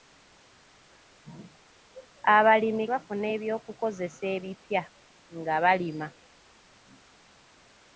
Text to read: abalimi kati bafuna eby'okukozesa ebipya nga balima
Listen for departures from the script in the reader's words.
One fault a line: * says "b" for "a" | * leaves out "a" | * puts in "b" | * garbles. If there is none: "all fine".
* leaves out "kati"